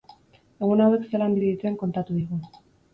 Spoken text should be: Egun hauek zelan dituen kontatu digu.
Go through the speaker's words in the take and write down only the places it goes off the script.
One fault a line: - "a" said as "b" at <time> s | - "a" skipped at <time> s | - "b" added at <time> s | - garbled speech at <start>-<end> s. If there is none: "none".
none